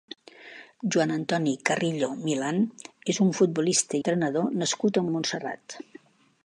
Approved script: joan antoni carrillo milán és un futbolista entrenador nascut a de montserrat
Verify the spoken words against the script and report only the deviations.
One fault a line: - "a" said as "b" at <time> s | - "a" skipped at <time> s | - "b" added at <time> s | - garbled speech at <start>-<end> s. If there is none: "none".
none